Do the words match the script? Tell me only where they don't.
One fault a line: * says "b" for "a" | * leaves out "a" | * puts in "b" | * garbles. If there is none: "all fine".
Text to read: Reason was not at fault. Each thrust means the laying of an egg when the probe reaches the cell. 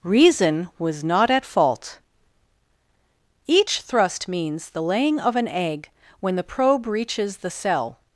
all fine